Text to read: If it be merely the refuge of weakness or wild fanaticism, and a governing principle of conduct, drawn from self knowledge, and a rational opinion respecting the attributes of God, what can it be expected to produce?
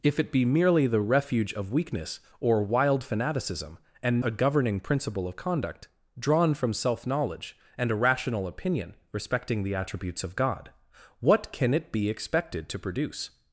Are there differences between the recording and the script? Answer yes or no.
no